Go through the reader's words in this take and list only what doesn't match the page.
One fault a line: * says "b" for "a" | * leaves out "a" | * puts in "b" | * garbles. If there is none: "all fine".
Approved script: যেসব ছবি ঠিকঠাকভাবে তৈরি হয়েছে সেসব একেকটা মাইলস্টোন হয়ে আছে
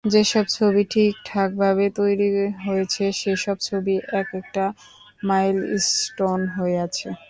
* puts in "ছবি"